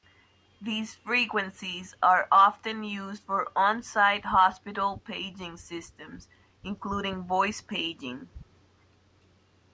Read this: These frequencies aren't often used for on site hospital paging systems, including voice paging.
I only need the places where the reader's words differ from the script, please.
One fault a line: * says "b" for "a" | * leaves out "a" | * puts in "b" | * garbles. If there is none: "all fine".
* says "are" for "aren't"